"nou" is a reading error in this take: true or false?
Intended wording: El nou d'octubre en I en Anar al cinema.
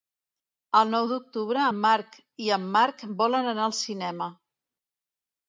false